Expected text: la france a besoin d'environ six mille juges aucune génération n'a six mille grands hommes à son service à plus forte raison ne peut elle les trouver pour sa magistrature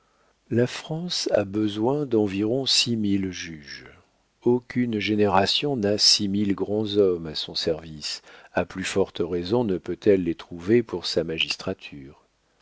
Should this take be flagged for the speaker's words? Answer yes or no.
no